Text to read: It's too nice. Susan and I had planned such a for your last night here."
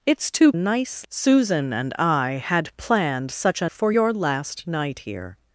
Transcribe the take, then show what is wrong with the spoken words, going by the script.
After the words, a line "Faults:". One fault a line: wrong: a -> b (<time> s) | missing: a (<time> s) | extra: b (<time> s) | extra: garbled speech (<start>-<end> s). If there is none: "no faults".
It's too nice. Susan and I had planned such a for your last night here."
Faults:
no faults